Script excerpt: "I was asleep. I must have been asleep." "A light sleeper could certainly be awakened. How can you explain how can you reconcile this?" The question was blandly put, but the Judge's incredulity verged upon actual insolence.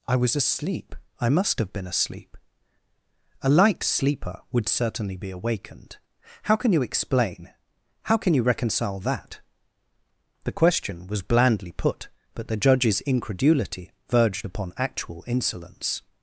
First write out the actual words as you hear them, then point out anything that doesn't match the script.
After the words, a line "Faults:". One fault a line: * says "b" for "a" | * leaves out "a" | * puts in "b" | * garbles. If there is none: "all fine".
"I was asleep. I must have been asleep." "A light sleeper would certainly be awakened. How can you explain how can you reconcile that?" The question was blandly put, but the Judge's incredulity verged upon actual insolence.
Faults:
* says "would" for "could"
* says "that" for "this"